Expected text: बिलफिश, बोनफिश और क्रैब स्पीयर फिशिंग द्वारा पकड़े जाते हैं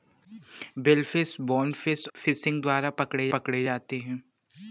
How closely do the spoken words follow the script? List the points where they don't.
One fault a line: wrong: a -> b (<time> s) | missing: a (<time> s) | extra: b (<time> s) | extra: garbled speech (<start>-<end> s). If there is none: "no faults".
missing: और क्रैब स्पीयर (2.1 s)
extra: पकड़े (3.3 s)